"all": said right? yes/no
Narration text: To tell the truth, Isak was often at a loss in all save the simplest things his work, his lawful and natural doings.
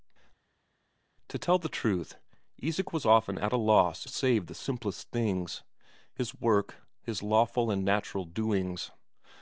no